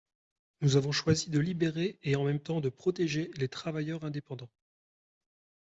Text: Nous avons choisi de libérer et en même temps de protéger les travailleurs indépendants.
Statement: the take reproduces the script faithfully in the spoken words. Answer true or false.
true